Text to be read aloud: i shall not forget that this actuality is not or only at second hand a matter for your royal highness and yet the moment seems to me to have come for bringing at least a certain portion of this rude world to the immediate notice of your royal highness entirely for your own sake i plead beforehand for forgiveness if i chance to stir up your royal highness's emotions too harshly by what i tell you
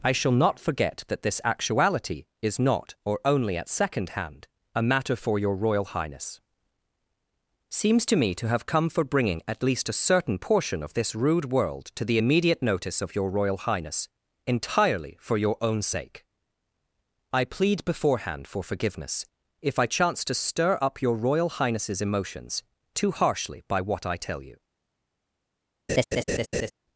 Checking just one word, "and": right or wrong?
wrong